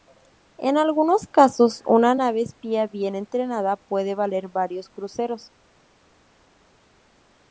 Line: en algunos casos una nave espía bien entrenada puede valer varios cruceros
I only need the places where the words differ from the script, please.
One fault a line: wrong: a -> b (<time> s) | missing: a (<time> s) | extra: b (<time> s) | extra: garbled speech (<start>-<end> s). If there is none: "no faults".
no faults